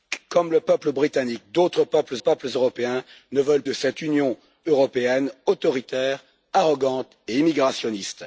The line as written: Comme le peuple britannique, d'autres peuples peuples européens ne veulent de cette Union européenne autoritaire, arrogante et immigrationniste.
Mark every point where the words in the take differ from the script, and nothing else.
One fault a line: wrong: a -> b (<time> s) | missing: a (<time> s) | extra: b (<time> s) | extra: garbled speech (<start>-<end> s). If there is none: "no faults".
no faults